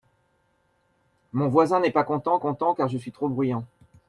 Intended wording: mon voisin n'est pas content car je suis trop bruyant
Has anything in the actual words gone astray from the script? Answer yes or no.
yes